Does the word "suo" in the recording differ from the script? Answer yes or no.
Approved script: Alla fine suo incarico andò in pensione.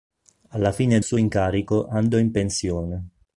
no